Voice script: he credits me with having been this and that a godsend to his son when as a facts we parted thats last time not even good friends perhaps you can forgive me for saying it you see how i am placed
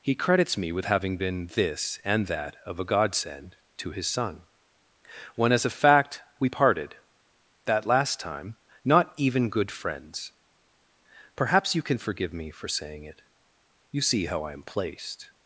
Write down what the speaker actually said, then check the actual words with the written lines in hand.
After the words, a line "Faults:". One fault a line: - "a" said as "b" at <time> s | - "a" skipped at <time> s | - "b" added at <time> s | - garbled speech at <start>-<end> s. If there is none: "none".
he credits me with having been this and that of a godsend to his son when as a fact we parted that last time not even good friends perhaps you can forgive me for saying it you see how i am placed
Faults:
- "of" added at 2.6 s
- "facts" said as "fact" at 5.7 s
- "thats" said as "that" at 7.6 s